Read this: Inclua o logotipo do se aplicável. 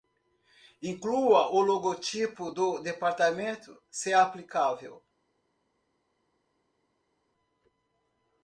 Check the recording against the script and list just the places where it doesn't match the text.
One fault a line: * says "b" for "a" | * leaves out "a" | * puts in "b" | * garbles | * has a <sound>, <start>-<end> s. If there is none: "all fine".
* puts in "departamento"